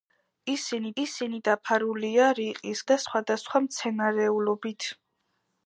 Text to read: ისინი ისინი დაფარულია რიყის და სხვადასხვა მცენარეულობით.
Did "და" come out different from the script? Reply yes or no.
no